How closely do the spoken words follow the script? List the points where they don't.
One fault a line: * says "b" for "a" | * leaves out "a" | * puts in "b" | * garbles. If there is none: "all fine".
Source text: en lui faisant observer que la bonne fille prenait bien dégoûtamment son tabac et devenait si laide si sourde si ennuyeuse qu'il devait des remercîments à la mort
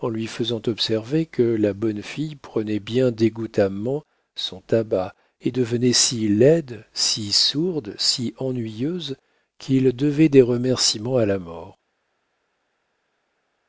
all fine